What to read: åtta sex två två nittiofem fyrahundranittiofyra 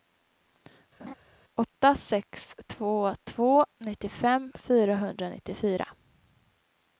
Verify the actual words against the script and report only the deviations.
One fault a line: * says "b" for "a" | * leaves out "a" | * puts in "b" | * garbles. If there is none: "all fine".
all fine